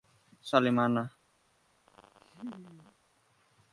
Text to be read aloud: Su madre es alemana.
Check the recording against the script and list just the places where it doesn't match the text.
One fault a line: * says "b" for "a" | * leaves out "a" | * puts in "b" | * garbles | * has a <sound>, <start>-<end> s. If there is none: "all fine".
* leaves out "madre es"
* has a laugh, 1.9-3.0 s